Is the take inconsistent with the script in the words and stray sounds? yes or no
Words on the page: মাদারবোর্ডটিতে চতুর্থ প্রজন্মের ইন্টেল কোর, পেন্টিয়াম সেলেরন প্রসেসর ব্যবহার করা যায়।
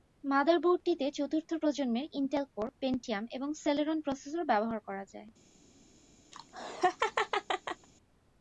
yes